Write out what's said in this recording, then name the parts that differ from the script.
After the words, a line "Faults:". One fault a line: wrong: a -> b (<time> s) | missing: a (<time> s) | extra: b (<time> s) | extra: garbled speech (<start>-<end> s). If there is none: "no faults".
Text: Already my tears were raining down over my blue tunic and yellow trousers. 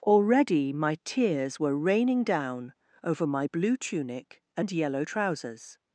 Already my tears were raining down over my blue tunic and yellow trousers.
Faults:
no faults